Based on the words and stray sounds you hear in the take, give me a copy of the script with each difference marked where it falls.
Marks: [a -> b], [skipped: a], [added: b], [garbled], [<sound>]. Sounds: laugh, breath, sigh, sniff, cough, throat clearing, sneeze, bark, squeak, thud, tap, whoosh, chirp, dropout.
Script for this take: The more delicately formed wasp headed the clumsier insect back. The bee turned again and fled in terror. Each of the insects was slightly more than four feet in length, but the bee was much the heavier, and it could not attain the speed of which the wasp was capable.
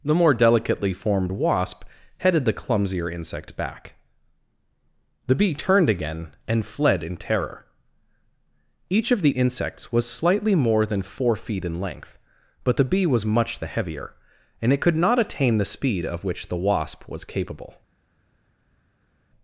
The more delicately formed wasp headed the clumsier insect back. The bee turned again and fled in terror. Each of the insects was slightly more than four feet in length, but the bee was much the heavier, and it could not attain the speed of which the wasp was capable.